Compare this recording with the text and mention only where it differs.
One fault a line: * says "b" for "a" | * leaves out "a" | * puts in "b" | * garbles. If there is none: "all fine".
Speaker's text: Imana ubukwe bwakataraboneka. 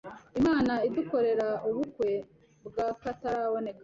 * puts in "idukorera"